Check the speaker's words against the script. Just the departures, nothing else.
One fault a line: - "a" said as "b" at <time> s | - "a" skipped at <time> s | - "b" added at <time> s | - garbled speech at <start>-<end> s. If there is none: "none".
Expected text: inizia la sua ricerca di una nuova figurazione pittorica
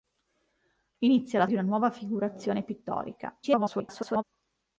- "sua ricerca" skipped at 1.4 s
- garbled speech at 3.4-4.2 s